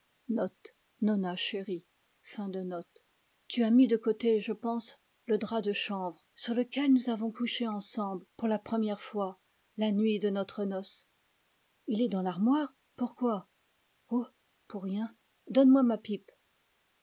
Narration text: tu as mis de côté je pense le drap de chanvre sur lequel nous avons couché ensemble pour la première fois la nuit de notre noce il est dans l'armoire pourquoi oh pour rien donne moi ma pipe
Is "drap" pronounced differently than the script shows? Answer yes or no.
no